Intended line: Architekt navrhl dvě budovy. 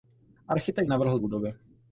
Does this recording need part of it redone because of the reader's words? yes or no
yes